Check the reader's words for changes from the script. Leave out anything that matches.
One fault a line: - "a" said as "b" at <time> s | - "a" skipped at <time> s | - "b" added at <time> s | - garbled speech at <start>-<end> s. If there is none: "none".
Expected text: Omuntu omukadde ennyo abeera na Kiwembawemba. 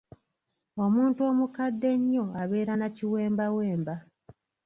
none